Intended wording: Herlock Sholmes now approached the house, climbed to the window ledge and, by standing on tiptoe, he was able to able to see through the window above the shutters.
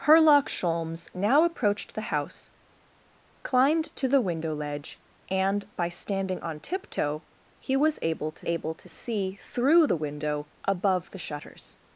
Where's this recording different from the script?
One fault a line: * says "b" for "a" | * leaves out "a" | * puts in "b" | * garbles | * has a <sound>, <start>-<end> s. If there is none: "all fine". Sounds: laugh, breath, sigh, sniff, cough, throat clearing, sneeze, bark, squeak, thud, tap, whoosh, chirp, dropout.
all fine